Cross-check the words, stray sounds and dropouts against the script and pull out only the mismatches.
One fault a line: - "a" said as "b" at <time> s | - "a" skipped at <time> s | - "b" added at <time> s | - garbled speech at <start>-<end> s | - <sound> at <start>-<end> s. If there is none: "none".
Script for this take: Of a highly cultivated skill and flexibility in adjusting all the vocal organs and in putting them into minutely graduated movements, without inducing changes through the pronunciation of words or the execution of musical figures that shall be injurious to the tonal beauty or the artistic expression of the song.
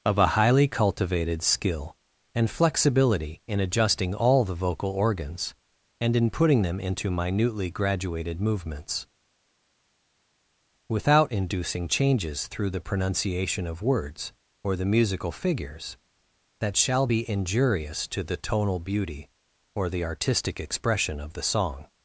- "execution of" skipped at 14.9 s